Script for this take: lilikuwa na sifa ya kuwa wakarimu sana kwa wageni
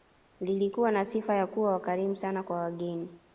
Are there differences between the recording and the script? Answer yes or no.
no